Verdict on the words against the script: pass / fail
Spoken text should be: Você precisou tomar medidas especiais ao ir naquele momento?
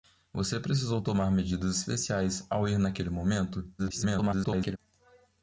fail